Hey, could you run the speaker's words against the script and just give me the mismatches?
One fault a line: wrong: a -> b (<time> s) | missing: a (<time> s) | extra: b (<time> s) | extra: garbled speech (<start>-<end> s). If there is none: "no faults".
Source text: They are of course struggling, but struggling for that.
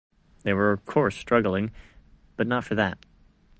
wrong: are -> were (0.5 s)
wrong: struggling -> not (2.5 s)